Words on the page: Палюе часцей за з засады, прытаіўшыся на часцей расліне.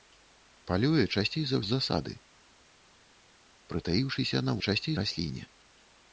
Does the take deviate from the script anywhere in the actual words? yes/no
no